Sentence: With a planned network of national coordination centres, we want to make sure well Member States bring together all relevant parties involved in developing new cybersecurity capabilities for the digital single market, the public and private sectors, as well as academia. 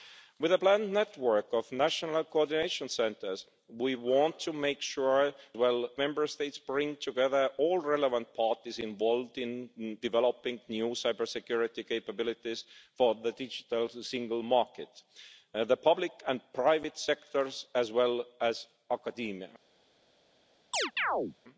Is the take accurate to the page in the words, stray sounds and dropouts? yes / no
no